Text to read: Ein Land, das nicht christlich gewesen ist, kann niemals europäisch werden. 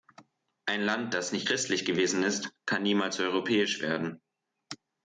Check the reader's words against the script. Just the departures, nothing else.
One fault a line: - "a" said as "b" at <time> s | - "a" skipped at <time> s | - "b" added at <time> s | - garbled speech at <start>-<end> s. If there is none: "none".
none